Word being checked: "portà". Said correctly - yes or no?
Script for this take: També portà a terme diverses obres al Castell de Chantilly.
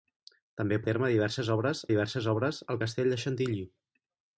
no